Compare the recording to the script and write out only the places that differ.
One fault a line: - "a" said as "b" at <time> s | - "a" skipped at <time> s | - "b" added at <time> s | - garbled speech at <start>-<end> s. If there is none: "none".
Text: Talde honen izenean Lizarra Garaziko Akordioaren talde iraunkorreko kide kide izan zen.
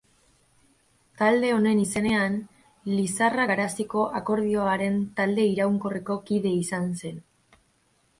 - "kide" skipped at 6.6 s